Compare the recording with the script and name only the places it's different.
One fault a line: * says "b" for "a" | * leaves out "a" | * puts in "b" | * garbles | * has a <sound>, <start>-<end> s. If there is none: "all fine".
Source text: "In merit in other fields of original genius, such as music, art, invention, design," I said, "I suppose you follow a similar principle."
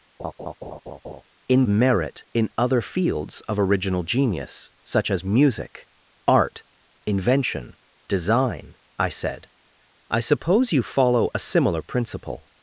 * has a laugh, 0.2-1.2 s